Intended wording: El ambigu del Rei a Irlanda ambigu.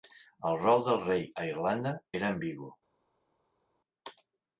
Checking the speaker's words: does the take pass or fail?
fail